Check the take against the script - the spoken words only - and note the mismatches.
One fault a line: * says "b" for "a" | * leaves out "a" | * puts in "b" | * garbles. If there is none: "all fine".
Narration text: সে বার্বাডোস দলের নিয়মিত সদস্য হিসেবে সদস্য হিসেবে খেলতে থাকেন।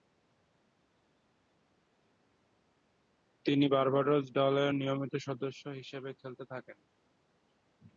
* says "তিনি" for "সে"
* leaves out "সদস্য হিসেবে"